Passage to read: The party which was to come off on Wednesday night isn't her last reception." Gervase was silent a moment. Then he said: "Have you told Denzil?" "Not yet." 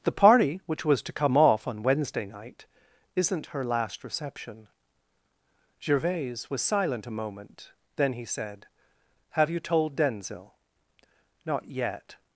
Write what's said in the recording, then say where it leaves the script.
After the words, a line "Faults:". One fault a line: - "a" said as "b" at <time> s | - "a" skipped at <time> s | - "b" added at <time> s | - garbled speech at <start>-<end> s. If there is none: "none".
The party which was to come off on Wednesday night isn't her last reception." Gervase was silent a moment. Then he said: "Have you told Denzil?" "Not yet."
Faults:
none